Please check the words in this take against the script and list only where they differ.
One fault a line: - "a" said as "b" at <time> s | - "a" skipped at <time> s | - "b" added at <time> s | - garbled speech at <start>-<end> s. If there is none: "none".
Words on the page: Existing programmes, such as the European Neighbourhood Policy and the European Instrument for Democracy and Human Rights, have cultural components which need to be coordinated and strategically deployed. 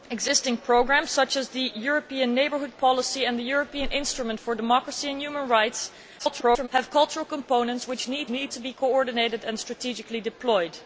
- garbled speech at 6.2-6.7 s
- "need" added at 8.3 s